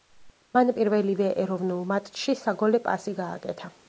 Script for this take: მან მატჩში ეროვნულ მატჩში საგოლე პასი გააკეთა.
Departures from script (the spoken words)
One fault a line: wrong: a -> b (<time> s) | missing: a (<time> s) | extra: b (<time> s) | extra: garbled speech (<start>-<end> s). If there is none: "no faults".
wrong: მატჩში -> პირველივე (0.8 s)